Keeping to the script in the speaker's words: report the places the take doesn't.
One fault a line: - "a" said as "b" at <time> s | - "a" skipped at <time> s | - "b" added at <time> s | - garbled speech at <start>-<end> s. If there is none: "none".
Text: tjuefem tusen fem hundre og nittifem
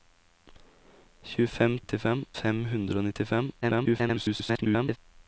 - "tusen" said as "nittifem" at 1.8 s
- garbled speech at 3.6-5.0 s